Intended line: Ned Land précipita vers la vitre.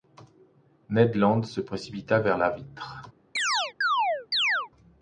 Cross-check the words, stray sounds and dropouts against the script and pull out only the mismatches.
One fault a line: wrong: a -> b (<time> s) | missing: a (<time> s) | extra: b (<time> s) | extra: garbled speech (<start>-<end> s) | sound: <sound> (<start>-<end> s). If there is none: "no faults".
extra: se (1.4 s)
sound: chirp (3.4-4.7 s)